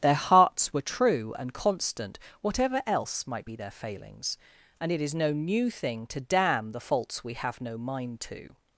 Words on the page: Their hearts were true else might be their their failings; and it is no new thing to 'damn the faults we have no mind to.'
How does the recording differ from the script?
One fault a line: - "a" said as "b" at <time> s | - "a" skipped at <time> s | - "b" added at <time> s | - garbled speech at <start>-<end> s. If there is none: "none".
- "and constant whatever" added at 1.4 s
- "their" skipped at 3.7 s